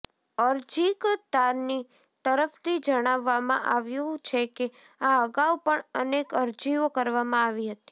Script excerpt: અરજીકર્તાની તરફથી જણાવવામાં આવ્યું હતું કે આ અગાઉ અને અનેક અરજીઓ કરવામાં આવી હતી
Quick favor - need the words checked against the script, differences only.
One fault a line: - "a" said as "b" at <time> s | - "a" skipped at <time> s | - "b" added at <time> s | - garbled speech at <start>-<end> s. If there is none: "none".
- "હતું" said as "છે" at 4.2 s
- "અને" said as "પણ" at 5.6 s